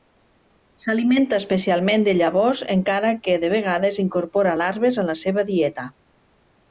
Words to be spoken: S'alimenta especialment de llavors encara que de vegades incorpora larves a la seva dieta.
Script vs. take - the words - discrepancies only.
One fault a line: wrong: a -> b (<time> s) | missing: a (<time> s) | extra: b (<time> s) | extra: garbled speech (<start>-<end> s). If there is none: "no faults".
no faults